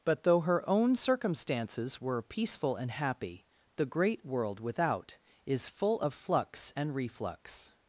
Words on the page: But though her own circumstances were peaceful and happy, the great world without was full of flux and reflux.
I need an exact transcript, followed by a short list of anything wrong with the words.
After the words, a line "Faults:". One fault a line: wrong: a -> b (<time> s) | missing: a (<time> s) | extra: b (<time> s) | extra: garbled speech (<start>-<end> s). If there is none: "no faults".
But though her own circumstances were peaceful and happy, the great world without is full of flux and reflux.
Faults:
wrong: was -> is (5.4 s)